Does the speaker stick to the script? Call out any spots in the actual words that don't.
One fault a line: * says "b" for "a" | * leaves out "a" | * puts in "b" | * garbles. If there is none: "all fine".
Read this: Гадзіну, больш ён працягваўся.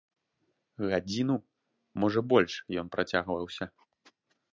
* puts in "можа"